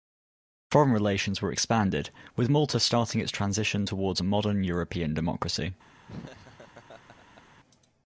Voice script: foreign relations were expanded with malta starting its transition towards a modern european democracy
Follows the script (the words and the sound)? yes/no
no